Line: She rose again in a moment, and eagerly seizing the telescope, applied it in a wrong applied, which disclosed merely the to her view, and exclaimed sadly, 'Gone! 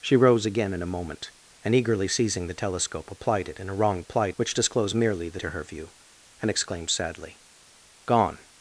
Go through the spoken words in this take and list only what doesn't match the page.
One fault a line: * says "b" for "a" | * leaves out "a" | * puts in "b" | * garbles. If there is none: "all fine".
all fine